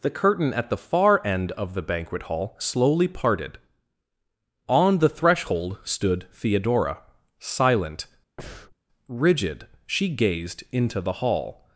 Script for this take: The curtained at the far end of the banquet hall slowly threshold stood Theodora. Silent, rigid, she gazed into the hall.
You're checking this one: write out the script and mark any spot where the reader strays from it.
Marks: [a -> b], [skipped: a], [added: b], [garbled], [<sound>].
The [curtained -> curtain] at the far end of the banquet hall slowly [added: parted On the] threshold stood Theodora. Silent, [breath] rigid, she gazed into the hall.